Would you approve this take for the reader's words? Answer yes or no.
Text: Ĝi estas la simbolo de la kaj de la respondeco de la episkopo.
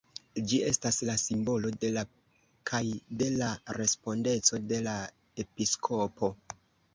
yes